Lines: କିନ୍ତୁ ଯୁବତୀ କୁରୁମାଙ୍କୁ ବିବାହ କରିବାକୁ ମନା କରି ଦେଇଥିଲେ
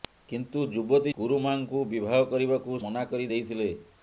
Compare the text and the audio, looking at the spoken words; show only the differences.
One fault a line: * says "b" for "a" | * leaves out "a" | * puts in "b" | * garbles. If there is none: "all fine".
all fine